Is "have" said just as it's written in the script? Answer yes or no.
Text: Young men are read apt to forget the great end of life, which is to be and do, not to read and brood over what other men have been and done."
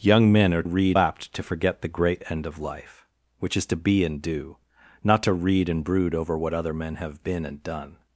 yes